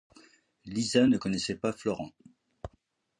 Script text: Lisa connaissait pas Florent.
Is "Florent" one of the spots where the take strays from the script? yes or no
no